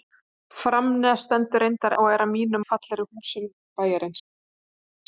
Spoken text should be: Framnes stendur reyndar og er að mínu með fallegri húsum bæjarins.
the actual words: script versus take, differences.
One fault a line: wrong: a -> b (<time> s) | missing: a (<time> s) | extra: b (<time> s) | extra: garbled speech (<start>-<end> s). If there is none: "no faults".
no faults